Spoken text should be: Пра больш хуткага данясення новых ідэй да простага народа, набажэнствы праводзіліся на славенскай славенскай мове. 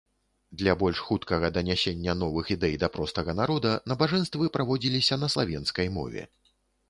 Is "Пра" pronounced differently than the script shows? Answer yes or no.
yes